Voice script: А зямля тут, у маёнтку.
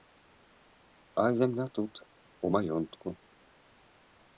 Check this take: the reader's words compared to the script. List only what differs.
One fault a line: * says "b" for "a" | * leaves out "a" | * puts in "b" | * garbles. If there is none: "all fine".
all fine